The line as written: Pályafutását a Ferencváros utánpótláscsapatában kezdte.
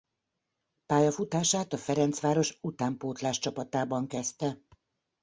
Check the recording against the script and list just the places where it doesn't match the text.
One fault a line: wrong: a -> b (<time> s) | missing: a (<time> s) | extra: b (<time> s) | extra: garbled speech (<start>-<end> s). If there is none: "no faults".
no faults